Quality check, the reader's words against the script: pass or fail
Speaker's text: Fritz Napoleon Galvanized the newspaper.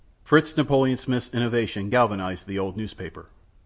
fail